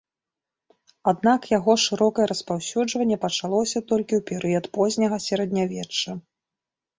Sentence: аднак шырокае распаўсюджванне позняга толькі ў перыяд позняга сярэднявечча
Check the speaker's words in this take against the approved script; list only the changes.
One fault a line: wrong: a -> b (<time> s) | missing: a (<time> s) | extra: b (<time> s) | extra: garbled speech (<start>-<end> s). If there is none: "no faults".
extra: яго (1.6 s)
wrong: позняга -> пачалося (3.3 s)